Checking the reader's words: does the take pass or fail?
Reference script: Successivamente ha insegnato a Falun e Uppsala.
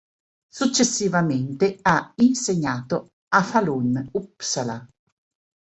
fail